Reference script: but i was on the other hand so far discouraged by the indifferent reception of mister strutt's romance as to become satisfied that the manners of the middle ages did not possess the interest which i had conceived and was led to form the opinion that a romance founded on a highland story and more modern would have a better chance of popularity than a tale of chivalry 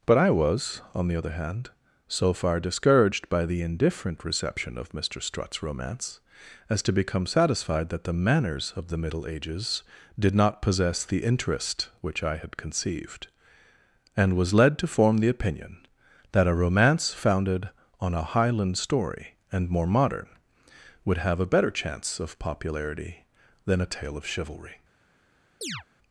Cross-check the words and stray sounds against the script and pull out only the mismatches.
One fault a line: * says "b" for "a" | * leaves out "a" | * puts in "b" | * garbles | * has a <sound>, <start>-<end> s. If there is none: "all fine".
* has a chirp, 25.6-25.8 s